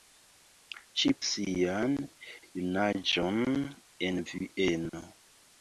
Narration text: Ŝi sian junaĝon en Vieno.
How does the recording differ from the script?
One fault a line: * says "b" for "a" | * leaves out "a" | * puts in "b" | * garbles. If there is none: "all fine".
all fine